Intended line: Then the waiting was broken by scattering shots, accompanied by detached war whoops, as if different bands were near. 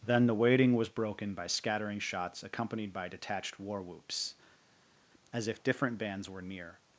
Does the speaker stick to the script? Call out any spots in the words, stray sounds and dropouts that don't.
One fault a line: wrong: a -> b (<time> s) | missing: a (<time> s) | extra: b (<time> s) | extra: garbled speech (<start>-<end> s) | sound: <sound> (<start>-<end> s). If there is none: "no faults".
no faults